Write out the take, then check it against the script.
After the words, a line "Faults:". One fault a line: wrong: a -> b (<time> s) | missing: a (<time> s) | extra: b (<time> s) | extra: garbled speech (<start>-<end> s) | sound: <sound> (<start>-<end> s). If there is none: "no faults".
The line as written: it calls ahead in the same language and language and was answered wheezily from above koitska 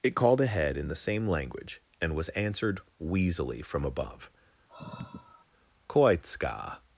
it called ahead in the same language and was answered wheezily from above koitska
Faults:
wrong: calls -> called (0.1 s)
missing: language and (2.1 s)
sound: sigh (4.7-5.5 s)